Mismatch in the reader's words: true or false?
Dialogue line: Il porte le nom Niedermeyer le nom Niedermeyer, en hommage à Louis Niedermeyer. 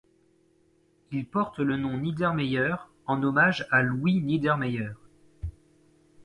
true